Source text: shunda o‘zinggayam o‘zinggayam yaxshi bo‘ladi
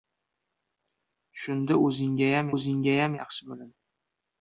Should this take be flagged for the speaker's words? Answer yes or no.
no